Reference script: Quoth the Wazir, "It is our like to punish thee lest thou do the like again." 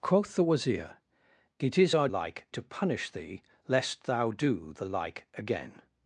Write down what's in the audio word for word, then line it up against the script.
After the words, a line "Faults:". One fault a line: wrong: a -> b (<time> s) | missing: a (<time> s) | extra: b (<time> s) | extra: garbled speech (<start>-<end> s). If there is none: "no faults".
Quoth the Wazir, "It is our like to punish thee lest thou do the like again."
Faults:
no faults